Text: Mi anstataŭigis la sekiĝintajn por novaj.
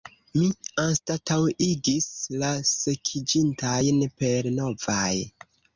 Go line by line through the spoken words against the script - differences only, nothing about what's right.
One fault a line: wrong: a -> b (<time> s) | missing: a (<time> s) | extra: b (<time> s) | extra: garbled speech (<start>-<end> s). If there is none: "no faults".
wrong: por -> per (4.2 s)